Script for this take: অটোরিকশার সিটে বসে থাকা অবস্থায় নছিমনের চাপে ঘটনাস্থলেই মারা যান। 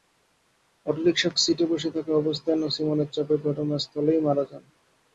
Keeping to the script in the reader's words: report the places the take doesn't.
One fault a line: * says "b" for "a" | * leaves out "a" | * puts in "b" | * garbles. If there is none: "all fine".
all fine